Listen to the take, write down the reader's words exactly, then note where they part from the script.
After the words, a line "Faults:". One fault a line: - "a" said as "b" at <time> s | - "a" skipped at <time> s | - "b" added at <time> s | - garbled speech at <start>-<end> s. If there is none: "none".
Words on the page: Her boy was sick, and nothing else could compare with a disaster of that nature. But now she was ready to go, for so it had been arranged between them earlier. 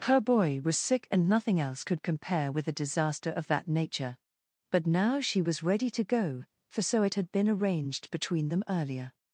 Her boy was sick, and nothing else could compare with a disaster of that nature. But now she was ready to go, for so it had been arranged between them earlier.
Faults:
none